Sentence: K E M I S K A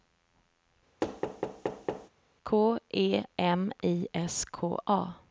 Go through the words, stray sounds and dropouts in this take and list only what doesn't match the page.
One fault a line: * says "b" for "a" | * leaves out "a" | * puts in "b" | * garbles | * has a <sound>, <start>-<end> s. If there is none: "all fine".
* has a thud, 1.0-2.1 s